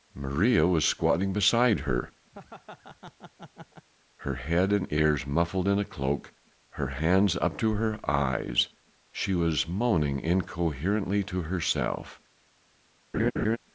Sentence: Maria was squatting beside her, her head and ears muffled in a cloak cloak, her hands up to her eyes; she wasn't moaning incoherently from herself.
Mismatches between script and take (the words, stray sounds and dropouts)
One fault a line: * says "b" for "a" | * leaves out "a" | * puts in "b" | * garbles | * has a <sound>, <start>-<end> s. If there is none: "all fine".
* has a laugh, 2.3-3.9 s
* leaves out "cloak"
* says "was" for "wasn't"
* says "to" for "from"
* has a laugh, 13.1-13.6 s